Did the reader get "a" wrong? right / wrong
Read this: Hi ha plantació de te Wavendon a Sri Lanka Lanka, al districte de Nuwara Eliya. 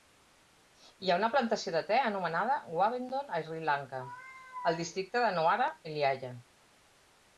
right